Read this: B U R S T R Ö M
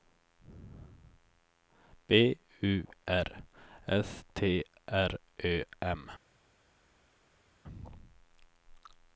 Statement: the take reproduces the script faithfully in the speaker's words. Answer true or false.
true